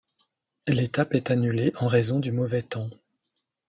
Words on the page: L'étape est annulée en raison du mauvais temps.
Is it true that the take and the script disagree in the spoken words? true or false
false